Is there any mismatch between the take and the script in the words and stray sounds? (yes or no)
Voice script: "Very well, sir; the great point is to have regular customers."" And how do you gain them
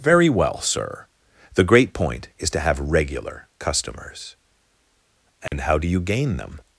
yes